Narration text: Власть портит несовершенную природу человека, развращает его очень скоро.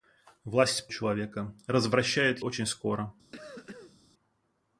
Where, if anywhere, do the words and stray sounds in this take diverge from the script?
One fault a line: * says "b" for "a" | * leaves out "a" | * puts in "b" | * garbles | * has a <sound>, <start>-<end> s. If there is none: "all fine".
* leaves out "портит несовершенную природу"
* leaves out "его"
* has a cough, 3.3-4.0 s